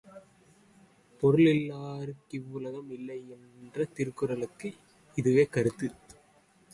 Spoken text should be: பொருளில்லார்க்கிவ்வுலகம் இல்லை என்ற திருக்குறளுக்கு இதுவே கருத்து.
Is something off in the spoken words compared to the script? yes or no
no